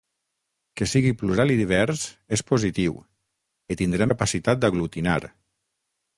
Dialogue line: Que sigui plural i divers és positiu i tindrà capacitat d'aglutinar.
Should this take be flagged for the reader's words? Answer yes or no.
no